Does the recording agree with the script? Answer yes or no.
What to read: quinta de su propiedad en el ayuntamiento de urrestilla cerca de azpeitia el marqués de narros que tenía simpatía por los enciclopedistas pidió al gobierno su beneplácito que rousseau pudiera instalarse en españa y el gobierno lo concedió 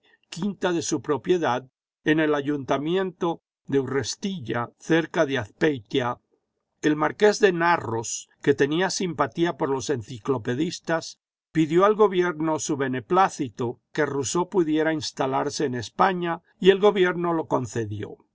yes